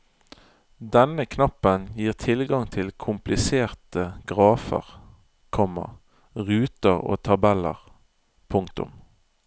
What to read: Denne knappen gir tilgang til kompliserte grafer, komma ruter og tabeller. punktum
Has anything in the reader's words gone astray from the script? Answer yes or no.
no